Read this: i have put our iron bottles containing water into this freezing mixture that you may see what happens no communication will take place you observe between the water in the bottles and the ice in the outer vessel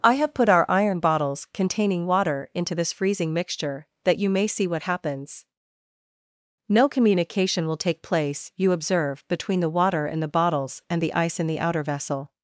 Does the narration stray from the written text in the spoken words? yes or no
no